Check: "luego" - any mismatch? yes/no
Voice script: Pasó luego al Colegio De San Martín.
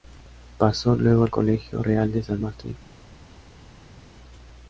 no